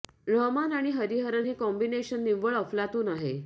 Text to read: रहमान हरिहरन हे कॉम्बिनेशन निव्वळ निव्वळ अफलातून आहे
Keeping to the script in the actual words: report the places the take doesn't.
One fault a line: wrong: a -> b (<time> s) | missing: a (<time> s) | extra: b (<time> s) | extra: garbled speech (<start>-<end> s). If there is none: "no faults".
extra: आणि (0.7 s)
missing: निव्वळ (2.6 s)